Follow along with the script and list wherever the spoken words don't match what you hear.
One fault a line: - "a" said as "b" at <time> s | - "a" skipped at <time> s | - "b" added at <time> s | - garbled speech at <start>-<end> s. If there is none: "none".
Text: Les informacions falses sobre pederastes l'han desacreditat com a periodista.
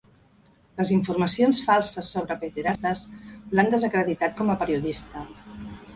none